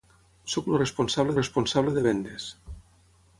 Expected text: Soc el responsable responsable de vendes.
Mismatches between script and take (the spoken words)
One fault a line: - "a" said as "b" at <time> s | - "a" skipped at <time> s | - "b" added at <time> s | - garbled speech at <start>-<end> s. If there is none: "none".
none